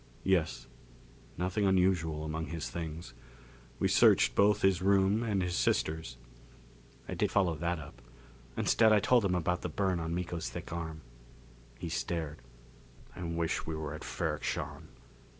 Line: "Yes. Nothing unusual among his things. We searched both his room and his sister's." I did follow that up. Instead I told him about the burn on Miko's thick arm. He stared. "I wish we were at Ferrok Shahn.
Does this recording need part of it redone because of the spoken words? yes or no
no